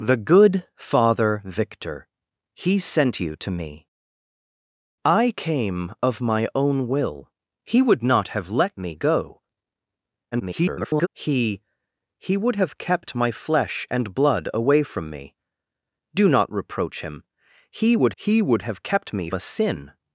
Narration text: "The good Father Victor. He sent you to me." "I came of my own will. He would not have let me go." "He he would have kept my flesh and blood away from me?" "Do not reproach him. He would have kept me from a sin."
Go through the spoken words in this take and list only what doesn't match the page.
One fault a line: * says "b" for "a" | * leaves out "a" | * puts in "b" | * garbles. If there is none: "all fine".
* garbles
* puts in "he would"
* leaves out "from"